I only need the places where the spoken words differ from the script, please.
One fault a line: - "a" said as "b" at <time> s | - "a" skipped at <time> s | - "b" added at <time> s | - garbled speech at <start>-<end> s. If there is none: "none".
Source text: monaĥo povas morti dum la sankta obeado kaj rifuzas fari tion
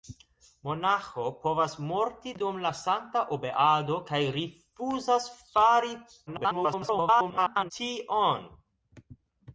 - garbled speech at 6.3-7.7 s